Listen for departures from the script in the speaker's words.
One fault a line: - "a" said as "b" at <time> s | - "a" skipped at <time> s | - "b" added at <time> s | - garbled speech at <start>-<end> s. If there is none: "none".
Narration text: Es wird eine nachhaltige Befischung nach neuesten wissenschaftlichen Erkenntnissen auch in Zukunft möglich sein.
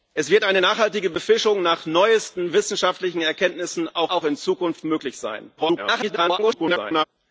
- "auch" added at 4.1 s
- garbled speech at 5.6-7.0 s